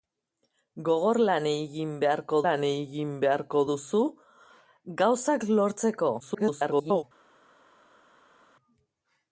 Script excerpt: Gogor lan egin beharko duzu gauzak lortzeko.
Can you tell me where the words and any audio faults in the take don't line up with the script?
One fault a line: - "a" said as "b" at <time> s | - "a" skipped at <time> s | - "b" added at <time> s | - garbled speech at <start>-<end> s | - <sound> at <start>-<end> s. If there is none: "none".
- "lan egin beharko" added at 2.5 s
- garbled speech at 6.2-7.0 s